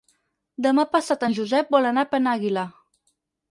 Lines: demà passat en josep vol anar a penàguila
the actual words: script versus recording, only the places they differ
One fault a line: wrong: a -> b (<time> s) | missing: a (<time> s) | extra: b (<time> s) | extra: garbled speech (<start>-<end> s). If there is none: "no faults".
no faults